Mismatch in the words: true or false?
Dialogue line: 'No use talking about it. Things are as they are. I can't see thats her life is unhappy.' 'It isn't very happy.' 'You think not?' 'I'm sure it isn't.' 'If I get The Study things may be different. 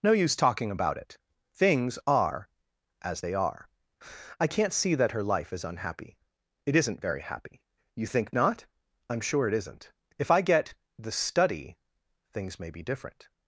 true